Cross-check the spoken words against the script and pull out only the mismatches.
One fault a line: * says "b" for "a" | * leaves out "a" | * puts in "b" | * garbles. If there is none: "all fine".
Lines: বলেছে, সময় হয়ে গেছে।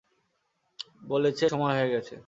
all fine